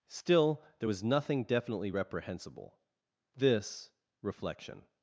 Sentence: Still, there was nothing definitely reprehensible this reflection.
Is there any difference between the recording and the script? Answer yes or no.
no